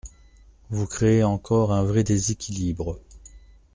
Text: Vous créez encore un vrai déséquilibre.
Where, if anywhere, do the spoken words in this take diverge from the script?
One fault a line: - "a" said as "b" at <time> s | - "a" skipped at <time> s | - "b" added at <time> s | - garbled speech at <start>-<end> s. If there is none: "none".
none